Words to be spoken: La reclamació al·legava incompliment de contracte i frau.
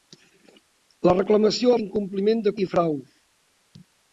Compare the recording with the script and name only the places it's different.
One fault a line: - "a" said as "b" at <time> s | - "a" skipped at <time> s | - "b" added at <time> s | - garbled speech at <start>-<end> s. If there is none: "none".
- "al·legava" skipped at 1.7 s
- "contracte" skipped at 2.6 s